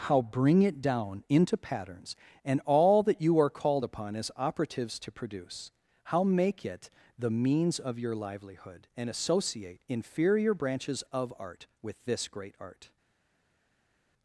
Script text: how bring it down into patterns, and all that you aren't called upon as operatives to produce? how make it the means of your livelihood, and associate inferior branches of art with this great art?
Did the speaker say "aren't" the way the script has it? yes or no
no